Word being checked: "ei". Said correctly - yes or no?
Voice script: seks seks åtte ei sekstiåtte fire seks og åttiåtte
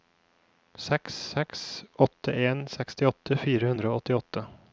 no